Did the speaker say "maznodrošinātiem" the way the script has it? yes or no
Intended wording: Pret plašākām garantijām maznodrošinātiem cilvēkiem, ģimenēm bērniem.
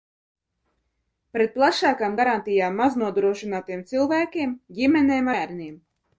yes